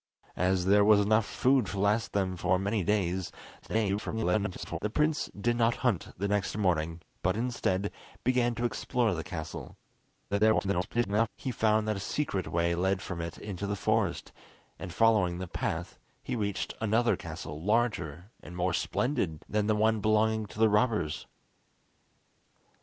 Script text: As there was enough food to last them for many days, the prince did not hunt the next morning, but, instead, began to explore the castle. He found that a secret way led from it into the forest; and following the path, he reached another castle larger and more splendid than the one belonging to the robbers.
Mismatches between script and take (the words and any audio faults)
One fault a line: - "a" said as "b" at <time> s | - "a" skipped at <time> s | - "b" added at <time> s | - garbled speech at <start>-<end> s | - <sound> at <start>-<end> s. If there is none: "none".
- garbled speech at 3.6-4.8 s
- garbled speech at 10.3-11.3 s